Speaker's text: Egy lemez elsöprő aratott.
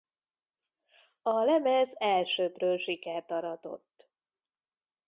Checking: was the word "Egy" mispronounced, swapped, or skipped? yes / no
yes